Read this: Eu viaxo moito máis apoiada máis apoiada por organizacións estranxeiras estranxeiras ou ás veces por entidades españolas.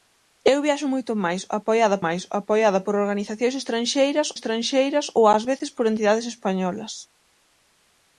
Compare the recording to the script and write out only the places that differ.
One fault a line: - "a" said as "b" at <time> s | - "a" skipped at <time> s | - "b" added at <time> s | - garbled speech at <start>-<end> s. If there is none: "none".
none